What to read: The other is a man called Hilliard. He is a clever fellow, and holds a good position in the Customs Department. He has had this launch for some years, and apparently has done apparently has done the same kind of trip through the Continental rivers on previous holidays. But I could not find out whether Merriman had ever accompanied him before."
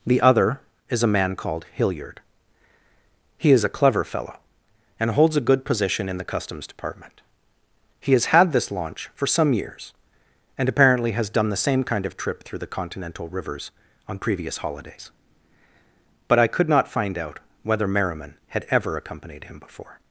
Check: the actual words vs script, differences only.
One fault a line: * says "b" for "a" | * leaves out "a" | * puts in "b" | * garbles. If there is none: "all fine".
* leaves out "apparently has done"